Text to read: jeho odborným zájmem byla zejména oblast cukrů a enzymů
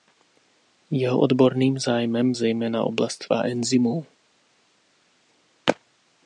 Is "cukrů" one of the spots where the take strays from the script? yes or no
yes